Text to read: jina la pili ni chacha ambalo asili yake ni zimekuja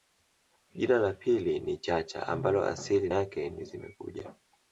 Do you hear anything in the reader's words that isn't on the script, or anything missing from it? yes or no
no